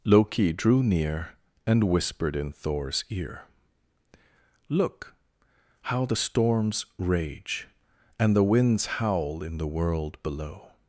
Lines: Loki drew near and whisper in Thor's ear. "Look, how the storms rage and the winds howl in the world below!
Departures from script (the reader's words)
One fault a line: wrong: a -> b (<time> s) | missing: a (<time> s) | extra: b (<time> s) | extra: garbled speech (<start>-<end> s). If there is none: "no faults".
wrong: whisper -> whispered (1.8 s)